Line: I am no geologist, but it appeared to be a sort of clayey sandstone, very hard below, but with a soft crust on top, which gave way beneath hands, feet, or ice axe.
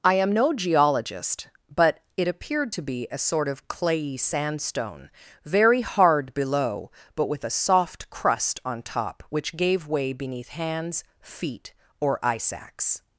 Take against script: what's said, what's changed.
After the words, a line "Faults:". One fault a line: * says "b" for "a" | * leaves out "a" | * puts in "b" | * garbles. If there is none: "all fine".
I am no geologist, but it appeared to be a sort of clayey sandstone, very hard below, but with a soft crust on top, which gave way beneath hands, feet, or ice axe.
Faults:
all fine